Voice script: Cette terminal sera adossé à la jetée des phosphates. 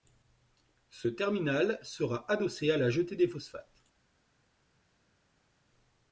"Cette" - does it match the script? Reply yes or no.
no